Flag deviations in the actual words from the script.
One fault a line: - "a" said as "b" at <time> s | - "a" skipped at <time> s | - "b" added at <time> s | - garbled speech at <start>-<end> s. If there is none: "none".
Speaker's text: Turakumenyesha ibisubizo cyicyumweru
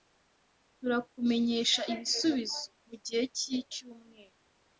- "mugihe" added at 2.9 s